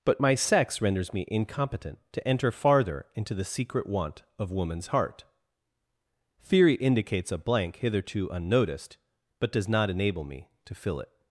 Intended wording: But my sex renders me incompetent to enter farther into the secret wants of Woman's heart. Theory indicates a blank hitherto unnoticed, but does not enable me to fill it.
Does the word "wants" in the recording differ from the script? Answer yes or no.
yes